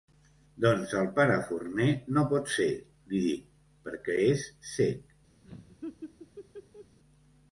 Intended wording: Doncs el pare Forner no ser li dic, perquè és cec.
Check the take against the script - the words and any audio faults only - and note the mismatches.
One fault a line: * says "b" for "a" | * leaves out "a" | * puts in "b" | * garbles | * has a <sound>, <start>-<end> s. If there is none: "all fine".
* puts in "pot"
* has a laugh, 5.4-7.0 s